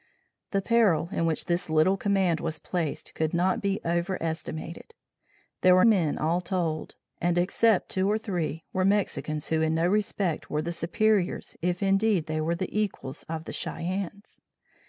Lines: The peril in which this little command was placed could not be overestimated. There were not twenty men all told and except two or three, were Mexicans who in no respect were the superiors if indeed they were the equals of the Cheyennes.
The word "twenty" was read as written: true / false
false